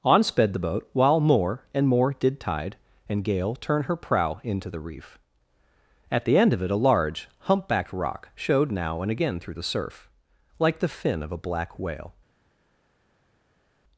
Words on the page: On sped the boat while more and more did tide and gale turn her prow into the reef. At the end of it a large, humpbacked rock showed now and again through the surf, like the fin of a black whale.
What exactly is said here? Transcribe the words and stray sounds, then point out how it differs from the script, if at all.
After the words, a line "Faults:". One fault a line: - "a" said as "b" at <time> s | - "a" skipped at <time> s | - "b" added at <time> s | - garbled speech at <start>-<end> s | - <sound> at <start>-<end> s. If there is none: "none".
On sped the boat while more and more did tide and gale turn her prow into the reef. At the end of it a large, humpbacked rock showed now and again through the surf, like the fin of a black whale.
Faults:
none